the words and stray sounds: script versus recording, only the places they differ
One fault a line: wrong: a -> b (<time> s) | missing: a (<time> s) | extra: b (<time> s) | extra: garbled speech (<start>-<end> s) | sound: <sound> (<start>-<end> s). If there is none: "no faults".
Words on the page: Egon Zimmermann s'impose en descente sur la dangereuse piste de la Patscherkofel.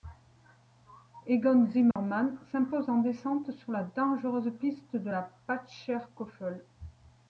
sound: dropout (1.9-2.0 s)